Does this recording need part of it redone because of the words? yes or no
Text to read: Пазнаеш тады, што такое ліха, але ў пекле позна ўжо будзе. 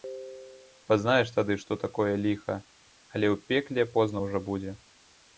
no